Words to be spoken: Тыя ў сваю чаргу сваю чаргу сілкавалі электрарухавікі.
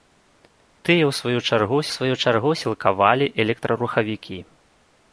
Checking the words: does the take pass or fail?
pass